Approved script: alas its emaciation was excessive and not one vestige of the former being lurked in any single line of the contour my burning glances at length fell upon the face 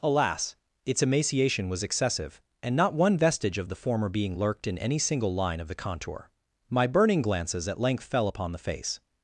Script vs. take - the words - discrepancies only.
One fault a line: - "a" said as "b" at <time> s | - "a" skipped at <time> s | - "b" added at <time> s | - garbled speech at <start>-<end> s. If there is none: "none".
none